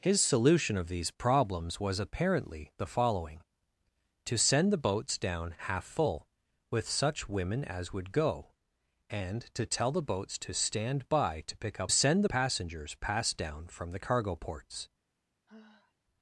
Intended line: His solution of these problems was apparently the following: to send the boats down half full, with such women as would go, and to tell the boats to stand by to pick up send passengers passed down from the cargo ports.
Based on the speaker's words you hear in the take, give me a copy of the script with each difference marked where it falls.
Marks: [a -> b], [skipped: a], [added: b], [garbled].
His solution of these problems was apparently the following: to send the boats down half full, with such women as would go, and to tell the boats to stand by to pick up send passengers passed down from the cargo ports.